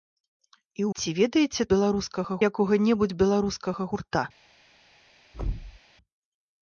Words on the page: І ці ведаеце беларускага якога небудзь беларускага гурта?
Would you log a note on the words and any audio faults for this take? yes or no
yes